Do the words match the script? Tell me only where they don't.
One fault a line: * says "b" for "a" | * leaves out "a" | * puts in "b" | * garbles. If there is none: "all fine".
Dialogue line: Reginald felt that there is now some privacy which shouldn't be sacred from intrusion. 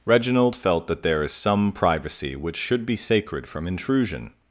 * leaves out "now"
* says "should" for "shouldn't"